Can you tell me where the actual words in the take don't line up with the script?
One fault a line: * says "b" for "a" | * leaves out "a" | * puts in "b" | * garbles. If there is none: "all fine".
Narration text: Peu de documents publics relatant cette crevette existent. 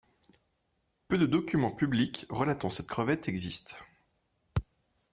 all fine